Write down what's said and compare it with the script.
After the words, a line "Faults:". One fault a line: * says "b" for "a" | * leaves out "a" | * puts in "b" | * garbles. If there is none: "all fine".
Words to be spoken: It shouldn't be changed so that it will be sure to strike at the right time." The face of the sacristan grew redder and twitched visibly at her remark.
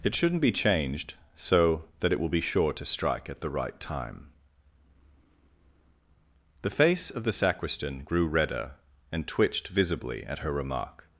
It shouldn't be changed so that it will be sure to strike at the right time." The face of the sacristan grew redder and twitched visibly at her remark.
Faults:
all fine